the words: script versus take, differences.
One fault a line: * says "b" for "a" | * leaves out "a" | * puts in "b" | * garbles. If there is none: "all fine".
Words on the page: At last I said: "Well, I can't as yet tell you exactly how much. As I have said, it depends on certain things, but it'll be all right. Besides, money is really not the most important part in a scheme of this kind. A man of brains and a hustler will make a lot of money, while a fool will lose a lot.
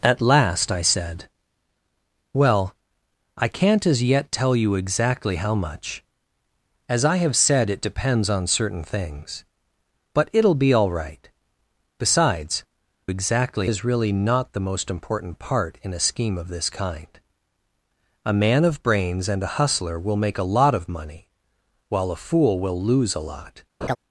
* says "exactly" for "money"